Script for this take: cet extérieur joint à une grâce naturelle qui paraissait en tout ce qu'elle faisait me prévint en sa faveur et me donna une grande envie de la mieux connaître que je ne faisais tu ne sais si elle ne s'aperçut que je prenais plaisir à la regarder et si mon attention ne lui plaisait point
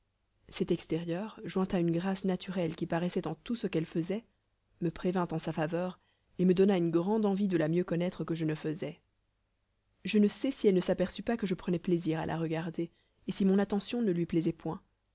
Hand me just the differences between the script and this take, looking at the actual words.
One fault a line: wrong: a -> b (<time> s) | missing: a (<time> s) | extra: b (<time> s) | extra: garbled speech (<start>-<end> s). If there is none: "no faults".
wrong: tu -> je (10.0 s)
extra: pas (11.2 s)